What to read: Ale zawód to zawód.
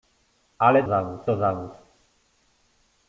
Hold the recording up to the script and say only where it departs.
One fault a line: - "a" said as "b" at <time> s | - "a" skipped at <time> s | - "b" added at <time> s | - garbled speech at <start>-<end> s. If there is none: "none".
none